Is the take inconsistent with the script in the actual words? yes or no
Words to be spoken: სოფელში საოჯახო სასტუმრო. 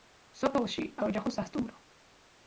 no